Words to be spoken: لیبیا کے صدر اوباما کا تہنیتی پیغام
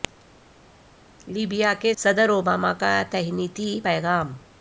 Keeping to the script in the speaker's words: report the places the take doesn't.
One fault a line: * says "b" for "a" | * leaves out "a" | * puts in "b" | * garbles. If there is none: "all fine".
all fine